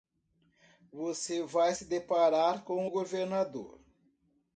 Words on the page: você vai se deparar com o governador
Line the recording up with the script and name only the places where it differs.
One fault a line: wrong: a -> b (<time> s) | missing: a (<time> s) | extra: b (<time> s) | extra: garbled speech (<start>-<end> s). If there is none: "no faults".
no faults